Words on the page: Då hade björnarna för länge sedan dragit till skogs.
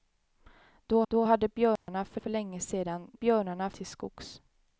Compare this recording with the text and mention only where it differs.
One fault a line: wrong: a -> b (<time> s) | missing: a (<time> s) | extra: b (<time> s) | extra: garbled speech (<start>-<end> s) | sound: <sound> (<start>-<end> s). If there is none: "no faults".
extra: då (1.1 s)
sound: dropout (1.8-1.9 s)
extra: för (2.1 s)
wrong: dragit -> björnarna (3.1 s)